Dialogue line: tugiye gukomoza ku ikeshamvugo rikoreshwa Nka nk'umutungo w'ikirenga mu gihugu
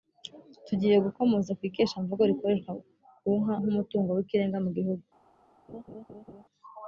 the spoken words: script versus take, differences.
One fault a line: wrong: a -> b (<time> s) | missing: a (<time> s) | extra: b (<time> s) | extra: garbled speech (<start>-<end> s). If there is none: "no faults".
extra: ku (3.2 s)